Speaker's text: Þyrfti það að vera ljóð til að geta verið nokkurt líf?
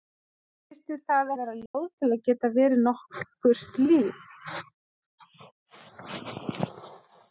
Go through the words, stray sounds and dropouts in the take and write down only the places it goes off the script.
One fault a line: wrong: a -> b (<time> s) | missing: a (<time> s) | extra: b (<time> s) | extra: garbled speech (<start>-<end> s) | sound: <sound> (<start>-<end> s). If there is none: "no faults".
sound: dropout (1.7-1.7 s)